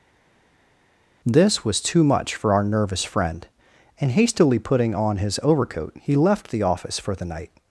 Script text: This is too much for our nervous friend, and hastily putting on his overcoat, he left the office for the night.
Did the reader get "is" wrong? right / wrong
wrong